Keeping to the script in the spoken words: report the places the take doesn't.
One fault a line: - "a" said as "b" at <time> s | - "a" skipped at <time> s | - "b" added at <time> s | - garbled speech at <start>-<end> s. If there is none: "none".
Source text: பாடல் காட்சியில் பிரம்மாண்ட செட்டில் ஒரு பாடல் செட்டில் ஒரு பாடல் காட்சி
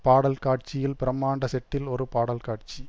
- "செட்டில் ஒரு பாடல்" skipped at 2.4 s